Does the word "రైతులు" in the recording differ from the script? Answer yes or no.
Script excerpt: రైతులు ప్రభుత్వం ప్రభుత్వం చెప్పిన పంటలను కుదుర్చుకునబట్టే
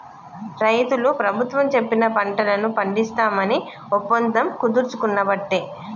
no